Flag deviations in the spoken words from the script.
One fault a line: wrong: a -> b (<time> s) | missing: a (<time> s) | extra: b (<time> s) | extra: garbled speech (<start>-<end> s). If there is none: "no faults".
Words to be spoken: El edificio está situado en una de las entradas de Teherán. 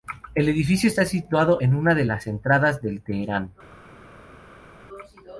no faults